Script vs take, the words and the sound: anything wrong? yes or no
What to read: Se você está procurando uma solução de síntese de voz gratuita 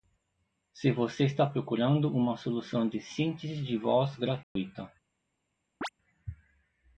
yes